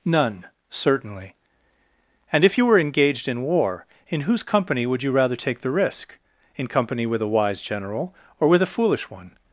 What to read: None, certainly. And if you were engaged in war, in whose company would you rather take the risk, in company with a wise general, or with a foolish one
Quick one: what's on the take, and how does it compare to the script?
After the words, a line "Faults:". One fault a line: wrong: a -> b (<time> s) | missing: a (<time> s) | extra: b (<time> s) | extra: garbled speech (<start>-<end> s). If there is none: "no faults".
None, certainly. And if you were engaged in war, in whose company would you rather take the risk, in company with a wise general, or with a foolish one
Faults:
no faults